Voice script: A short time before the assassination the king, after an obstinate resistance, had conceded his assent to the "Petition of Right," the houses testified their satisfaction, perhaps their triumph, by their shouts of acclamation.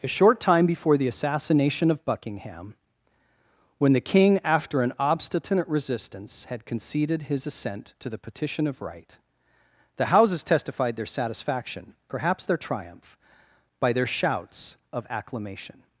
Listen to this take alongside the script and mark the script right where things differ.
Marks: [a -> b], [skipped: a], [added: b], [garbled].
A short time before the assassination [added: of Buckingham when] the king, after an obstinate resistance, had conceded his assent to the "Petition of Right," the houses testified their satisfaction, perhaps their triumph, by their shouts of acclamation.